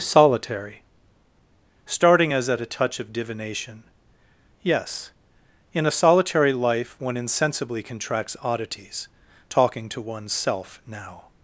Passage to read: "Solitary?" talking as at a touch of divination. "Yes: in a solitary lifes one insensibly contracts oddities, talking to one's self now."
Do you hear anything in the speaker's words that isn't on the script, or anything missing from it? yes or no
yes